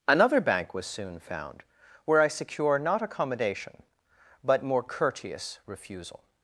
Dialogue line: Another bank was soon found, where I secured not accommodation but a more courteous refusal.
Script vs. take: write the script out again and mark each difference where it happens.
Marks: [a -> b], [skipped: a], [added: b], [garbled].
Another bank was soon found, where I [secured -> secure] not accommodation but [skipped: a] more courteous refusal.